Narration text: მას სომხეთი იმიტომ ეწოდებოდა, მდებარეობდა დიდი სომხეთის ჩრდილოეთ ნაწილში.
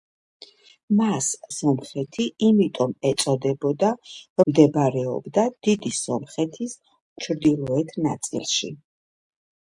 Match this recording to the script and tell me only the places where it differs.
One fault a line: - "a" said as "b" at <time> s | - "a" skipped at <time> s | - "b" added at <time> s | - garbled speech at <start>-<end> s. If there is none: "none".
none